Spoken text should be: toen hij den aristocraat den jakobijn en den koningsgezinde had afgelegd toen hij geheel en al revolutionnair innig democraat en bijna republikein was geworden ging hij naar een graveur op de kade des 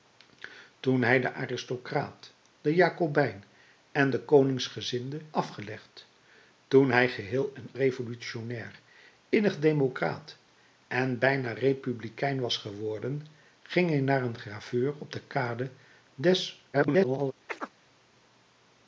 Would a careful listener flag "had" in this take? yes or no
yes